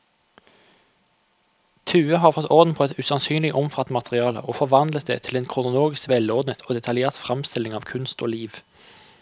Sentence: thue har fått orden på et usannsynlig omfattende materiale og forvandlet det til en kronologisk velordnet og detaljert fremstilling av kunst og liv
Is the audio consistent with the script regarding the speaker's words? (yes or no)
yes